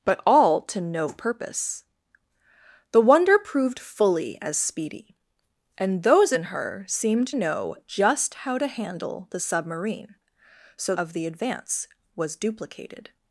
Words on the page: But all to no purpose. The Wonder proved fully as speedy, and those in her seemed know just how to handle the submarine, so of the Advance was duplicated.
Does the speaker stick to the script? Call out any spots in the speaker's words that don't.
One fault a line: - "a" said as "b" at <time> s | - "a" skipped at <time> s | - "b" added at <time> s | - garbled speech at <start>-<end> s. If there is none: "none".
none